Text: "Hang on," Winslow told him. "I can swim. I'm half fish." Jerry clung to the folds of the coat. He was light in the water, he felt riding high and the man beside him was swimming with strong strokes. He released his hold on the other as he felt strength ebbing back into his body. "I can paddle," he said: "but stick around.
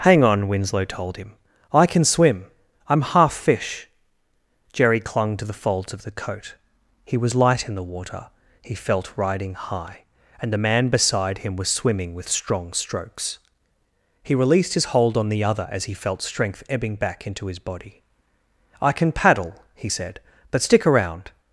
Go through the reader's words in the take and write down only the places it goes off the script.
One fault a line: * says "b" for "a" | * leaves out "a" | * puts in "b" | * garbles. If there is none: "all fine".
all fine